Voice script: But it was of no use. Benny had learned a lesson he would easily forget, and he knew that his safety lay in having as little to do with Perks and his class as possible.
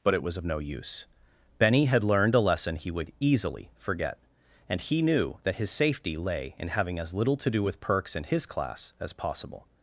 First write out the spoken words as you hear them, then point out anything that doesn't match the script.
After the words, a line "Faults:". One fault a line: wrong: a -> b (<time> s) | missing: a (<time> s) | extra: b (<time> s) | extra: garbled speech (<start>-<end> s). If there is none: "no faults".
But it was of no use. Benny had learned a lesson he would easily forget, and he knew that his safety lay in having as little to do with Perks and his class as possible.
Faults:
no faults